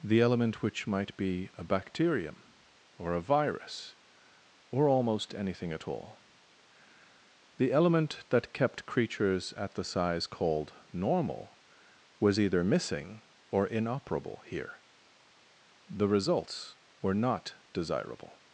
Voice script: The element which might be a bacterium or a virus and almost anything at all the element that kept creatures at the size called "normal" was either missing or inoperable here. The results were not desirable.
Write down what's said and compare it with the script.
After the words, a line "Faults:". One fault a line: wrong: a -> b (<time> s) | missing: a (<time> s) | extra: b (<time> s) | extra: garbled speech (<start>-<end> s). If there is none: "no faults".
The element which might be a bacterium or a virus or almost anything at all the element that kept creatures at the size called "normal" was either missing or inoperable here. The results were not desirable.
Faults:
wrong: and -> or (4.7 s)